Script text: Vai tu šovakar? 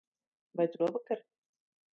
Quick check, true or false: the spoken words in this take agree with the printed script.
true